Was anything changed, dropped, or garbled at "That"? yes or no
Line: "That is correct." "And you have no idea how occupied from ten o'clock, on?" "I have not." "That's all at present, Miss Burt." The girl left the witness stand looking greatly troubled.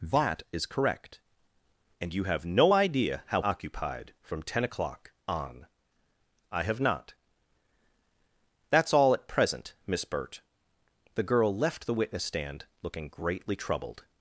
no